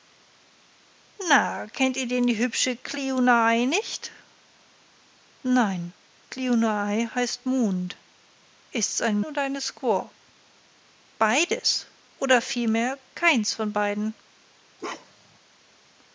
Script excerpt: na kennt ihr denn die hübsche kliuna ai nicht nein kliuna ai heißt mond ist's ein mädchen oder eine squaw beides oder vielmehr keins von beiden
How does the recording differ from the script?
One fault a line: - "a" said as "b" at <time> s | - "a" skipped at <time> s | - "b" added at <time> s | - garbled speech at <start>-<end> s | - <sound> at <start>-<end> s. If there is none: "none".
- "mädchen" skipped at 9.2 s
- bark at 14.8-15.4 s